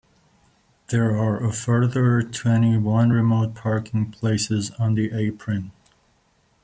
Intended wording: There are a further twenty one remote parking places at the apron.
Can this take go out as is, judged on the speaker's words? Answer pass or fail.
fail